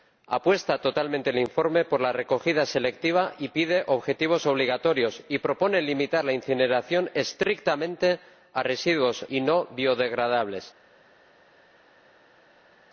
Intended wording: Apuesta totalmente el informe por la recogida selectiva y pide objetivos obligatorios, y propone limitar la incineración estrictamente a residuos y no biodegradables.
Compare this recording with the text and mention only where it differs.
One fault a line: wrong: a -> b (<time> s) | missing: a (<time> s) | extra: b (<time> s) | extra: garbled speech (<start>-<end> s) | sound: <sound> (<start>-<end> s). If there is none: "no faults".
no faults